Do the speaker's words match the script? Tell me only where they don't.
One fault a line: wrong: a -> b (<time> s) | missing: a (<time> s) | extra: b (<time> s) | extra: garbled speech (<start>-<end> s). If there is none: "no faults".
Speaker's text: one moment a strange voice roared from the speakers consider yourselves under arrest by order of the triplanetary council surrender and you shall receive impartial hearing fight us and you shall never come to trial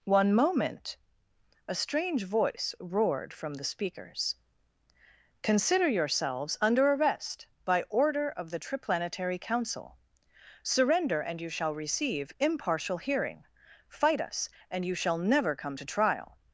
no faults